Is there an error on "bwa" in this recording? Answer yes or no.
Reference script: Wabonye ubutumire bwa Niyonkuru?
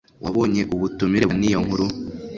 yes